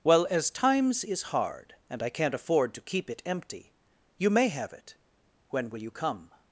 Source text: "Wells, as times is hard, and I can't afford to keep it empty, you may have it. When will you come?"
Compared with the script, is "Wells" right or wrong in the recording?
wrong